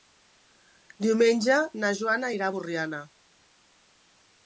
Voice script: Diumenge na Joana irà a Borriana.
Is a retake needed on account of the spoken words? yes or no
no